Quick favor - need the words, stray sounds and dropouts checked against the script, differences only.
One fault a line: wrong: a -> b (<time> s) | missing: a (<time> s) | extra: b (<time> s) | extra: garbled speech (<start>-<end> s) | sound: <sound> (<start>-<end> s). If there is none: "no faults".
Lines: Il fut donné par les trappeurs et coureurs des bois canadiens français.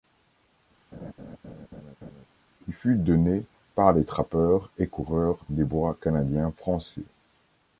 sound: laugh (0.9-2.3 s)